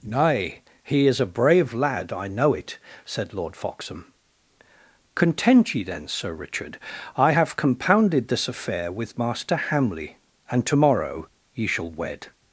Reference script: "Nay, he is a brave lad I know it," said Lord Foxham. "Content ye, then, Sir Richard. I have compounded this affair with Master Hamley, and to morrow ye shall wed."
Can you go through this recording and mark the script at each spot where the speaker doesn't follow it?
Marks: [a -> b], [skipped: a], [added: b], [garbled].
"Nay, he is a brave lad I know it," said Lord Foxham. "Content ye, then, Sir Richard. I have compounded this affair with Master Hamley, and to morrow ye shall wed."